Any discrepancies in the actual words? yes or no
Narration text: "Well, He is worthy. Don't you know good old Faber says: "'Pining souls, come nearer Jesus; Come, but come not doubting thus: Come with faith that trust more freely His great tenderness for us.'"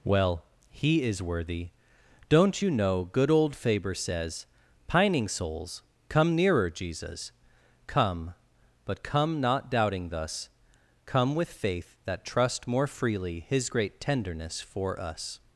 no